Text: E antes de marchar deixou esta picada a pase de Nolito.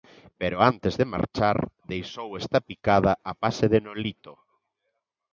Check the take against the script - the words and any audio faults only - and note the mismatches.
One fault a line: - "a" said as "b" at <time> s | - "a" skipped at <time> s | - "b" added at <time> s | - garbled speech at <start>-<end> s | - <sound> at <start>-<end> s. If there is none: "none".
- "E" said as "Pero" at 0.4 s